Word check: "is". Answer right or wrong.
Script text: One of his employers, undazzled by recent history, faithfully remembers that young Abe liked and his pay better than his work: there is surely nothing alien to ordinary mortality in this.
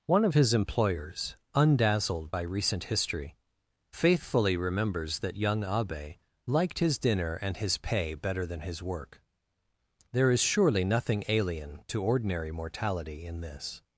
right